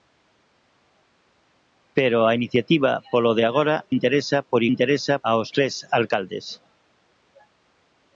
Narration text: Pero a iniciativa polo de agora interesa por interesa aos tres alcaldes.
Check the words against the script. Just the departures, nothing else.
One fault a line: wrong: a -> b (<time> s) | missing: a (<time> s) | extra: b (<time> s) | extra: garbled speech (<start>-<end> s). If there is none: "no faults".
no faults